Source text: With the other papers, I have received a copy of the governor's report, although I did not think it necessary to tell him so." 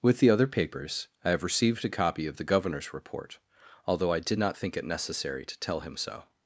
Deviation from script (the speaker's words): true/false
false